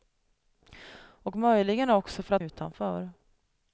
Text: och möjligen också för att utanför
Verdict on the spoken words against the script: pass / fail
pass